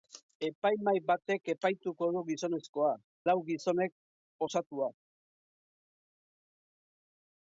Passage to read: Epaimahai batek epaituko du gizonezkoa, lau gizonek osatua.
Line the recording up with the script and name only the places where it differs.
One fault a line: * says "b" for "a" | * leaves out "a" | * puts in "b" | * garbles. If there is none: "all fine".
all fine